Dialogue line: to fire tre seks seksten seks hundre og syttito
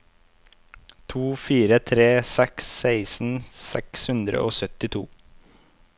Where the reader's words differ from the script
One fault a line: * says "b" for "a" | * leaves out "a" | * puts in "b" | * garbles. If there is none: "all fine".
all fine